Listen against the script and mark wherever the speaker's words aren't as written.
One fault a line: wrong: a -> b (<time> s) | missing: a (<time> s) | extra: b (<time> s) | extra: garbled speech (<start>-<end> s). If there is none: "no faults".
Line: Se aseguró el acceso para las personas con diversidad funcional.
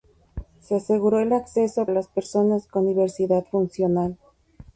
missing: para (1.9 s)